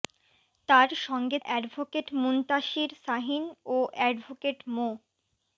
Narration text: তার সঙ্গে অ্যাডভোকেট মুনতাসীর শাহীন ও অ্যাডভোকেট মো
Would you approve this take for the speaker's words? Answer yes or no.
yes